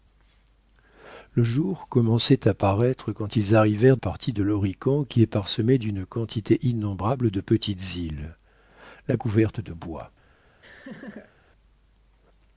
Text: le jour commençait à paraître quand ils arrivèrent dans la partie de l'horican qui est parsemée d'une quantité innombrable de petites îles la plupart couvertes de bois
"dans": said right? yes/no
no